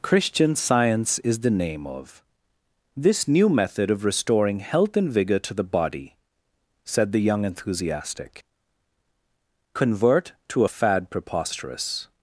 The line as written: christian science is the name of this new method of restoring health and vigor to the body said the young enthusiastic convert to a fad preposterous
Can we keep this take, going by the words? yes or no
yes